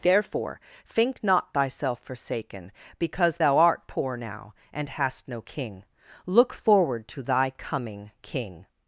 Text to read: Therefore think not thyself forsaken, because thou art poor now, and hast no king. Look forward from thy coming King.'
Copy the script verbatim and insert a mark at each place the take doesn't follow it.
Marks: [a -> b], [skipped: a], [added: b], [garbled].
Therefore think not thyself forsaken, because thou art poor now, and hast no king. Look forward [from -> to] thy coming King.'